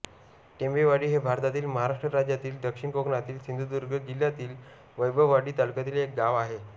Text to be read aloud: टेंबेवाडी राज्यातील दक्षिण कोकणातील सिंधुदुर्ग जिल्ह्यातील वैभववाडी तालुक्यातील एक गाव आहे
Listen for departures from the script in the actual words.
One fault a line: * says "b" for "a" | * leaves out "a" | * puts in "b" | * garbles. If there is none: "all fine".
* puts in "हे भारतातील महाराष्ट्र"